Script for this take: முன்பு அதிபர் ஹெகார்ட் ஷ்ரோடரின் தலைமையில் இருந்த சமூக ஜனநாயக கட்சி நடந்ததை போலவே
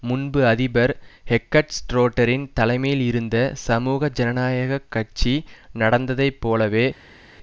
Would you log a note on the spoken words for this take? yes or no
no